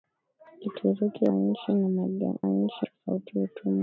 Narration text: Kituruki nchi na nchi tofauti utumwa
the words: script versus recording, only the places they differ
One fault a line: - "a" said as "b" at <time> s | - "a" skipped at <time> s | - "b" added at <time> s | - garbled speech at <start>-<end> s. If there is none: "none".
none